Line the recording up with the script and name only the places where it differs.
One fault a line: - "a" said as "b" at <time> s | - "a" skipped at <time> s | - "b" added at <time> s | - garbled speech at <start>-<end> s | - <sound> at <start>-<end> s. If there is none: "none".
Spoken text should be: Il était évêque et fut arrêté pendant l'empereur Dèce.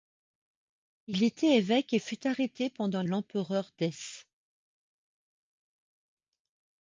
none